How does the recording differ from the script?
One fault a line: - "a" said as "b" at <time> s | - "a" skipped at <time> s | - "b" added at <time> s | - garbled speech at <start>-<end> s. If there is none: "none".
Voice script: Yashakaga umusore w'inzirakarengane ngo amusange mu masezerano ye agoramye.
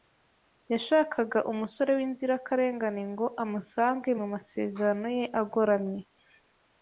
none